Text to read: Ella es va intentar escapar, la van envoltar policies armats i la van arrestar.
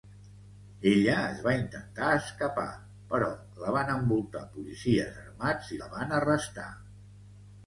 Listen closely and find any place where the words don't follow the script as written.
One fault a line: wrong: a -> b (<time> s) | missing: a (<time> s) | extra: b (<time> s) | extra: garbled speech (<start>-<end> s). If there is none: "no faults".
extra: però (3.1 s)